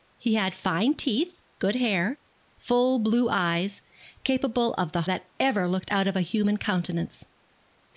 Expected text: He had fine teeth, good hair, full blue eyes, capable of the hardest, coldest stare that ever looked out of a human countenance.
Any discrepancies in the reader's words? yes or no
yes